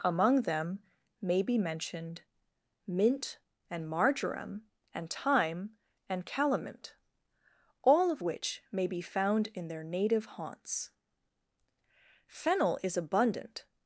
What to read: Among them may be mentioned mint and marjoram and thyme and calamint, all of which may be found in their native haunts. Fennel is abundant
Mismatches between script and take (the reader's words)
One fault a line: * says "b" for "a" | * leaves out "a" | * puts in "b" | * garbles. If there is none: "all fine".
all fine